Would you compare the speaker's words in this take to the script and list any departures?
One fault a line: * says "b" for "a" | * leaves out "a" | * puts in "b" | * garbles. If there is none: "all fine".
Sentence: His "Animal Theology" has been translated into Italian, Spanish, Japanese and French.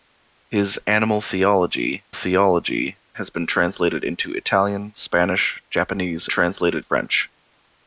* puts in "Theology"
* says "translated" for "and"